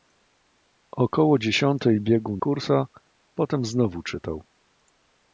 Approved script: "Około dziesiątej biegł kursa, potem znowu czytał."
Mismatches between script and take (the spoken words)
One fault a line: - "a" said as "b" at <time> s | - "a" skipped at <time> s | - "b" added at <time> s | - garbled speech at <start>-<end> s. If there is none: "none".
none